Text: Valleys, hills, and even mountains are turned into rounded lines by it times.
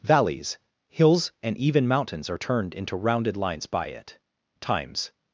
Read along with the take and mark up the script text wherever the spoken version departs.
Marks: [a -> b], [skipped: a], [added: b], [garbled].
Valleys, hills, and even mountains are turned into rounded lines by it times.